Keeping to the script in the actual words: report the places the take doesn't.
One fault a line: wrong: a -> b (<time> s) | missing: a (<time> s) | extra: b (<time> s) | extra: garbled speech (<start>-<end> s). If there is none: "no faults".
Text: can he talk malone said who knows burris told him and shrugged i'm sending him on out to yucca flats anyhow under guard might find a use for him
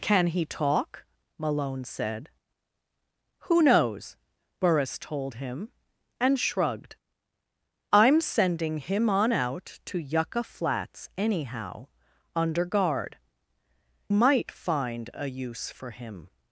no faults